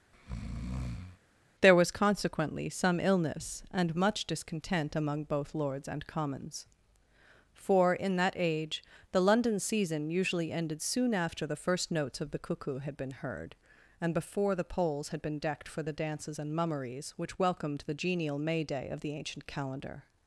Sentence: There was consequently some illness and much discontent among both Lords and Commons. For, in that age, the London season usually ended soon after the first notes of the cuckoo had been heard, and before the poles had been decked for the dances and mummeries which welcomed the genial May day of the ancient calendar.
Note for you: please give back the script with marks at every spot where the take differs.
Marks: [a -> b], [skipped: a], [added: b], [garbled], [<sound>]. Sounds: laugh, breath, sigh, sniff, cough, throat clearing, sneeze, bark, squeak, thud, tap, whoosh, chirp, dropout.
[breath] There was consequently some illness and much discontent among both Lords and Commons. For, in that age, the London season usually ended soon after the first notes of the cuckoo had been heard, and before the poles had been decked for the dances and mummeries which welcomed the genial May day of the ancient calendar.